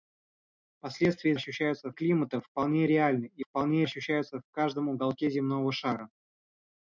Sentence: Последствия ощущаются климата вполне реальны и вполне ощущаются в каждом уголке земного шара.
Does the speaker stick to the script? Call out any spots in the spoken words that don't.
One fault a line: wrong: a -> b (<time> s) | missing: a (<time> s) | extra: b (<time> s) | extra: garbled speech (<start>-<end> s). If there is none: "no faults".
no faults